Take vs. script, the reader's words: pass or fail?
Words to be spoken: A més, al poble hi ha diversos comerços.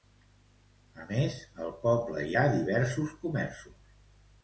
pass